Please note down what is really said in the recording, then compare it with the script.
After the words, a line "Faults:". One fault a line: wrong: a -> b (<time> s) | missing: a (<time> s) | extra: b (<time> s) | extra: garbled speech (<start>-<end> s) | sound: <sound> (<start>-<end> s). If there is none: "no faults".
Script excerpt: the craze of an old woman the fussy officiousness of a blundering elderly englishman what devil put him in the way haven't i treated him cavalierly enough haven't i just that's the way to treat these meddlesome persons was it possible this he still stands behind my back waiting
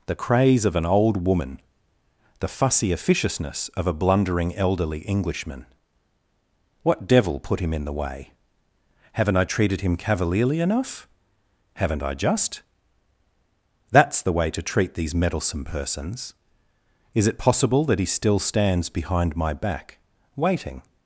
the craze of an old woman the fussy officiousness of a blundering elderly englishman what devil put him in the way haven't i treated him cavalierly enough haven't i just that's the way to treat these meddlesome persons is it possible that he still stands behind my back waiting
Faults:
wrong: was -> is (17.1 s)
wrong: this -> that (17.9 s)